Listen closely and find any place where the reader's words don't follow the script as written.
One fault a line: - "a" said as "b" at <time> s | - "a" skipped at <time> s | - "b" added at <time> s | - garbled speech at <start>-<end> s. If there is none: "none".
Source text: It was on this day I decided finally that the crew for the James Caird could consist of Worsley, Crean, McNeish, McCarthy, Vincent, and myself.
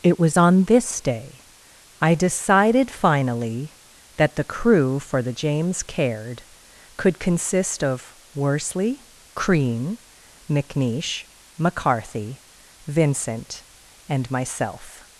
none